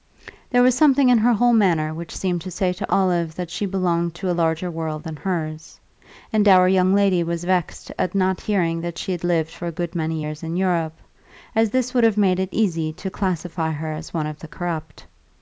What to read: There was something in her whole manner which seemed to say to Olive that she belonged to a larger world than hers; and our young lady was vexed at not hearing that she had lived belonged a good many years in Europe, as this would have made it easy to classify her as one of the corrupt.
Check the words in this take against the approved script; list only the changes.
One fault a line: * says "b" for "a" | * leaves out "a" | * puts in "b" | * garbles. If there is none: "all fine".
* says "for" for "belonged"